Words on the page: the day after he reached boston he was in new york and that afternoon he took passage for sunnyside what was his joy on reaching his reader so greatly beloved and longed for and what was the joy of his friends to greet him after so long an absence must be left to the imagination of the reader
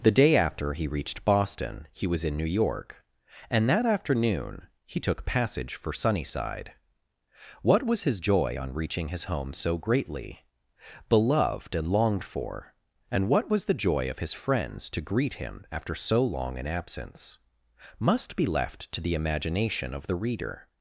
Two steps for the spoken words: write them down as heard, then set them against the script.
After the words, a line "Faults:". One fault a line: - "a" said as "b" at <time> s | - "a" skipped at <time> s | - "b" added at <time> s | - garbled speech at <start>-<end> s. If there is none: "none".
the day after he reached boston he was in new york and that afternoon he took passage for sunnyside what was his joy on reaching his home so greatly beloved and longed for and what was the joy of his friends to greet him after so long an absence must be left to the imagination of the reader
Faults:
- "reader" said as "home" at 9.2 s